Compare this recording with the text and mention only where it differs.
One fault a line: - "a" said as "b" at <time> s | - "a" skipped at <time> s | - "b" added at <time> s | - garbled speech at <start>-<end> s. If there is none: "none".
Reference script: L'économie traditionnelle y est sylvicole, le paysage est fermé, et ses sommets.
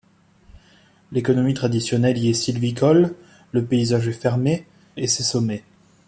none